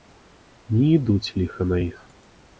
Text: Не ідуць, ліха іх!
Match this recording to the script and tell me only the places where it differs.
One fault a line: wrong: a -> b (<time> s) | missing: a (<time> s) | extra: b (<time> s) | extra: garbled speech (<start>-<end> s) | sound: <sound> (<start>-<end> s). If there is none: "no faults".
extra: на (1.6 s)